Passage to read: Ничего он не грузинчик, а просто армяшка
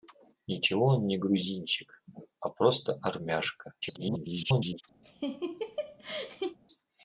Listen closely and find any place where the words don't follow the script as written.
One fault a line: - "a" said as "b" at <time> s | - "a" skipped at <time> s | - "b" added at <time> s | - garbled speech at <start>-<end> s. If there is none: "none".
- garbled speech at 3.8-4.8 s